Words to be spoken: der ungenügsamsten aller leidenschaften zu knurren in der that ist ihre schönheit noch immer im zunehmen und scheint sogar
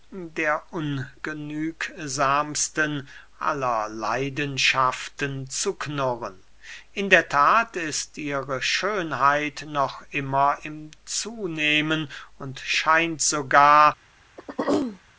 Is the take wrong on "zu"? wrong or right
right